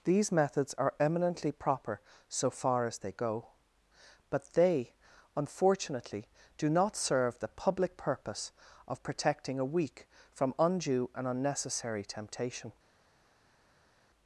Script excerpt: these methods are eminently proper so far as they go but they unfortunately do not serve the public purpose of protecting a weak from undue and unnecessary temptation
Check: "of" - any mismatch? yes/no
no